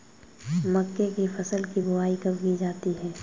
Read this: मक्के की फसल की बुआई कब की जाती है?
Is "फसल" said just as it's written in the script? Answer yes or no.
yes